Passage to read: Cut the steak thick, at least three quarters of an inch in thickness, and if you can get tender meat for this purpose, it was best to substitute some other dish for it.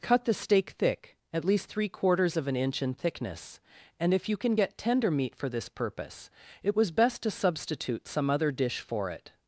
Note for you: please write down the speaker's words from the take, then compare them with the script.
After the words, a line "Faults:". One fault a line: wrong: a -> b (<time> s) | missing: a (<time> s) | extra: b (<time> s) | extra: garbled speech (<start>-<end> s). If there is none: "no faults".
Cut the steak thick, at least three quarters of an inch in thickness, and if you can get tender meat for this purpose, it was best to substitute some other dish for it.
Faults:
no faults